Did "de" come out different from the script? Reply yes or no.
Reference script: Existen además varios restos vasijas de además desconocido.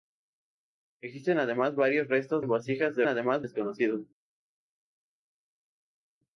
no